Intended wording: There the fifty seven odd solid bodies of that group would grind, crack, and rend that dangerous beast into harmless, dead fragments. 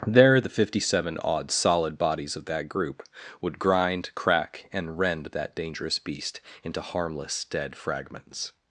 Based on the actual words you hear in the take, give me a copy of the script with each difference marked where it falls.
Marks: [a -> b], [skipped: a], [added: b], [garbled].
There the fifty seven odd solid bodies of that group would grind, crack, and rend that dangerous beast into harmless, dead fragments.